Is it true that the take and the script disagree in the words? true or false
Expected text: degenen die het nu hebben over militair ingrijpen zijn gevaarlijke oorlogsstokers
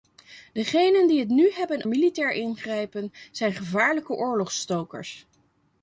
true